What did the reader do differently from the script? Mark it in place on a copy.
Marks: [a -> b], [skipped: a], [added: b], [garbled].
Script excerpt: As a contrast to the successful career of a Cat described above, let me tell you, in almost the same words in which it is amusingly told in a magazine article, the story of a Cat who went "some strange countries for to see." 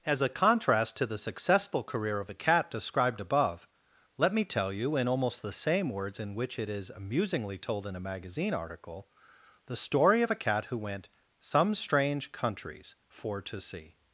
As a contrast to the successful career of a Cat described above, let me tell you, in almost the same words in which it is amusingly told in a magazine article, the story of a Cat who went "some strange countries for to see."